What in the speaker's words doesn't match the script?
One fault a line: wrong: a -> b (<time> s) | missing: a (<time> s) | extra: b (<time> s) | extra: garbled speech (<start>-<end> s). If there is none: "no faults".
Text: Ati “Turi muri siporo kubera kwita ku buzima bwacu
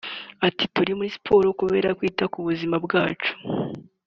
no faults